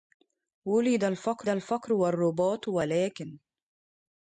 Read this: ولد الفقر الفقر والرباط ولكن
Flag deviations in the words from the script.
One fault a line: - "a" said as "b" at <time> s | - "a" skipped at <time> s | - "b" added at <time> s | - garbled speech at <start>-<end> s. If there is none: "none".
none